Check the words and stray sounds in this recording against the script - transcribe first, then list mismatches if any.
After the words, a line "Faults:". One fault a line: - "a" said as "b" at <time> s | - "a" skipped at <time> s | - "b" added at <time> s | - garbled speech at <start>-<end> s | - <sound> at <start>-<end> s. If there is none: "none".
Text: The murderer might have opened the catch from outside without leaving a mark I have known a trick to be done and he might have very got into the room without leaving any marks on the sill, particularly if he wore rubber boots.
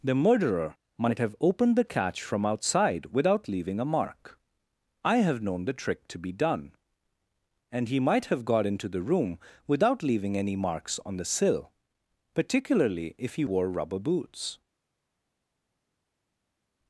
The murderer might have opened the catch from outside without leaving a mark I have known the trick to be done and he might have got into the room without leaving any marks on the sill, particularly if he wore rubber boots.
Faults:
- "a" said as "the" at 5.7 s
- "very" skipped at 8.4 s